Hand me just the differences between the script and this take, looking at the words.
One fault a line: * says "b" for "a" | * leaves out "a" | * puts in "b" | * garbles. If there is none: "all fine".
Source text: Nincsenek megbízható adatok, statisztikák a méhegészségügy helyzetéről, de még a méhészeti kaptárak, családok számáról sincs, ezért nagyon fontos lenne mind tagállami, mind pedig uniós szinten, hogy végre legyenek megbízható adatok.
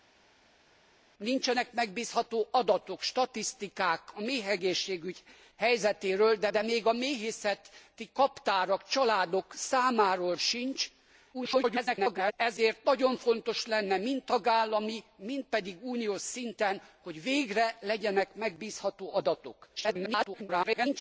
* puts in "de"
* garbles
* garbles